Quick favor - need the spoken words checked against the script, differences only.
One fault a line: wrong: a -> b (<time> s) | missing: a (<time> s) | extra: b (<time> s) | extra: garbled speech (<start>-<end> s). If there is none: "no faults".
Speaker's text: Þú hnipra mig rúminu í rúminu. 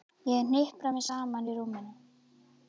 wrong: Þú -> Ég (0.3 s)
wrong: rúminu -> saman (1.1 s)